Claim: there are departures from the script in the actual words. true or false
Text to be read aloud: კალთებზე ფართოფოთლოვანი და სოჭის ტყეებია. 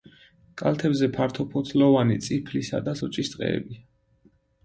true